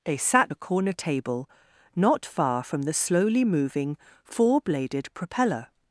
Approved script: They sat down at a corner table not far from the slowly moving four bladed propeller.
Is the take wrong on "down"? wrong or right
wrong